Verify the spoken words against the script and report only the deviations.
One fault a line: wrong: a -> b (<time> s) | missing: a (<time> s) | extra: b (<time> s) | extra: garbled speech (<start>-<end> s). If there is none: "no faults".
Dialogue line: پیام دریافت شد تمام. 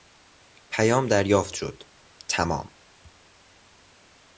no faults